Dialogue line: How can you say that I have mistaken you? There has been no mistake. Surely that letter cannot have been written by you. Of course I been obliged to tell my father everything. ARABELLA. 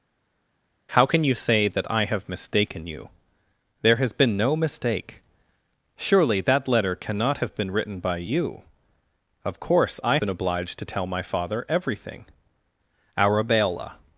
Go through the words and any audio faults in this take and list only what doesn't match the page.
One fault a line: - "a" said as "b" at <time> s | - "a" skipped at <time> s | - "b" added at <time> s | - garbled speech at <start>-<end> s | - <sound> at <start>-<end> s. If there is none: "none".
none